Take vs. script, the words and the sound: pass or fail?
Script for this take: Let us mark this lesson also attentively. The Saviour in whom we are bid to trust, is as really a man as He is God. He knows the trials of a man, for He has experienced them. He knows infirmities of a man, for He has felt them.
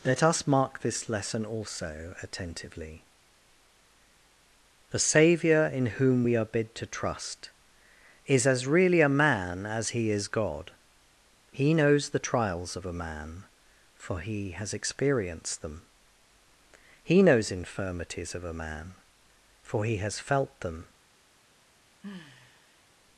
fail